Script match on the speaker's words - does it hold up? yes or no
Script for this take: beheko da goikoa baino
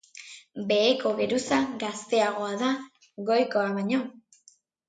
no